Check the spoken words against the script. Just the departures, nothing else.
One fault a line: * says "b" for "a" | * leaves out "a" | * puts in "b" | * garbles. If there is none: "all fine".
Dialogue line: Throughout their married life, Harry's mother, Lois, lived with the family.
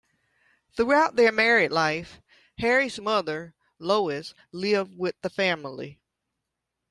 all fine